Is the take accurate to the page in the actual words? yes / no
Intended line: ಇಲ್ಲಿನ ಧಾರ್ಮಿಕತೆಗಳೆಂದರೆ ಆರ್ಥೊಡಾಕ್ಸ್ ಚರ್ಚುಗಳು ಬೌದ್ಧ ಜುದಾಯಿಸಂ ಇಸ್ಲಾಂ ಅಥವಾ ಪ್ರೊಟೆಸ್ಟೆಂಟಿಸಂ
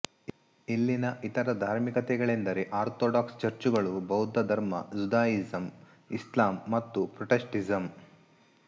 no